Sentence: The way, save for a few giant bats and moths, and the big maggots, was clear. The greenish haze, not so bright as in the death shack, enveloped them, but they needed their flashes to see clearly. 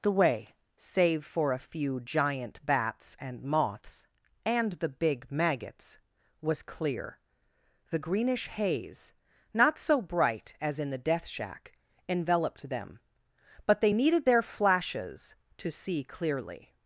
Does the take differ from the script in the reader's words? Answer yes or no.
no